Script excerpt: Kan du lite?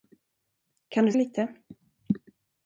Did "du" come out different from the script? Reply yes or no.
no